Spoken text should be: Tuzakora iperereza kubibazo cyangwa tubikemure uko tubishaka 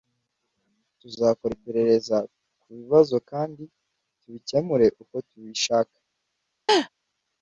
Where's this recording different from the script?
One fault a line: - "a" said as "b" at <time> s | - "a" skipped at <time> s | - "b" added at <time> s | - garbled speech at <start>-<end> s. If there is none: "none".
- "cyangwa" said as "kandi" at 3.3 s